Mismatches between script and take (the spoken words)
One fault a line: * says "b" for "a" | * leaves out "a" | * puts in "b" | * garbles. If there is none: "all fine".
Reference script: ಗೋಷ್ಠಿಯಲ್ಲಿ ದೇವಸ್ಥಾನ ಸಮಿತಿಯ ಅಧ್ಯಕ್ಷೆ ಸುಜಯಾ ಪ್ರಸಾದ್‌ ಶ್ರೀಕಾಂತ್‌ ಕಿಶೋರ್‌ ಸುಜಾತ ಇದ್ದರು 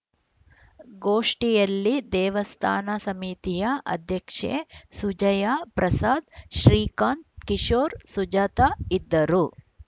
all fine